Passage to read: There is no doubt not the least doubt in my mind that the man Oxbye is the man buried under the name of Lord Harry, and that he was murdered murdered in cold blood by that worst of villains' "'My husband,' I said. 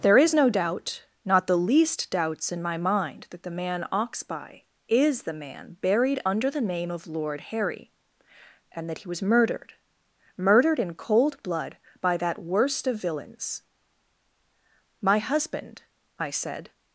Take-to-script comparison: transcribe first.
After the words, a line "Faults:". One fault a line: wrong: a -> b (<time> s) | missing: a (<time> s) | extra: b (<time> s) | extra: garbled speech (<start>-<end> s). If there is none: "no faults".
There is no doubt not the least doubts in my mind that the man Oxbye is the man buried under the name of Lord Harry, and that he was murdered murdered in cold blood by that worst of villains' "'My husband,' I said.
Faults:
wrong: doubt -> doubts (2.1 s)